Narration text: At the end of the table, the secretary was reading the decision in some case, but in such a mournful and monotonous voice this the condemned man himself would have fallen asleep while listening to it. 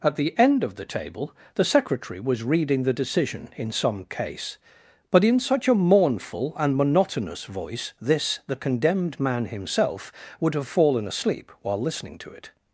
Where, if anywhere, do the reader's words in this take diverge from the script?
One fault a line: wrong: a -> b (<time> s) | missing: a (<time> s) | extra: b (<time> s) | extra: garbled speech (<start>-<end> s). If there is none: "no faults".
no faults